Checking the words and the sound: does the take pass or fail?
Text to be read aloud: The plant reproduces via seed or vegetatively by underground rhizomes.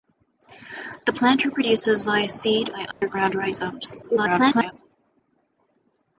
fail